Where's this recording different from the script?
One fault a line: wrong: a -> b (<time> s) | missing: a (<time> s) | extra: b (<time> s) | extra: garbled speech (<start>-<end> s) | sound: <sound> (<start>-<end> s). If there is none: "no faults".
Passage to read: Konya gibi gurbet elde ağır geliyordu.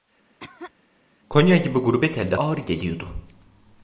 sound: cough (0.4-0.7 s)